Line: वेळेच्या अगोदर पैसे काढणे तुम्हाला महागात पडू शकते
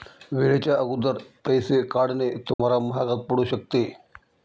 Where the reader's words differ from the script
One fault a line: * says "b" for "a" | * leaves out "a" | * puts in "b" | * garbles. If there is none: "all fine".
all fine